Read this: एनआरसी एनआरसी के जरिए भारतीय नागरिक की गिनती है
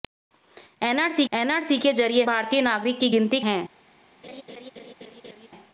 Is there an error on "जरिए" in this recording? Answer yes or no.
no